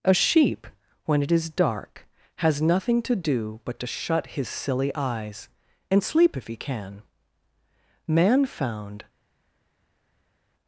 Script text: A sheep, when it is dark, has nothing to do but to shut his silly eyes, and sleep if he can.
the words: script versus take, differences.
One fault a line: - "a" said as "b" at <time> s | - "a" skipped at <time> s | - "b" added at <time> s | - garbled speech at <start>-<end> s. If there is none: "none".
- "Man found" added at 8.1 s